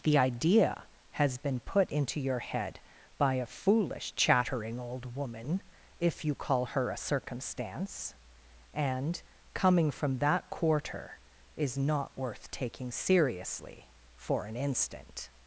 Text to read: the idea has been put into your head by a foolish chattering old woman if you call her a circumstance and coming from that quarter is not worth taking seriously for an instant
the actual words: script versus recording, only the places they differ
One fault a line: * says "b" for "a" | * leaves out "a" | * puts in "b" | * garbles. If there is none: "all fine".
all fine